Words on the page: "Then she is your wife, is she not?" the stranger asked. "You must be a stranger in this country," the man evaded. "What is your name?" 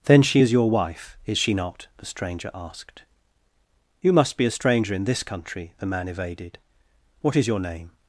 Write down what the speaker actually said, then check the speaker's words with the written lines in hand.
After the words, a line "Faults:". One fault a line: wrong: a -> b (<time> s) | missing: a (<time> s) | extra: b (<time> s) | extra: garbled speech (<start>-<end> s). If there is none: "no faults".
"Then she is your wife, is she not?" the stranger asked. "You must be a stranger in this country," the man evaded. "What is your name?"
Faults:
no faults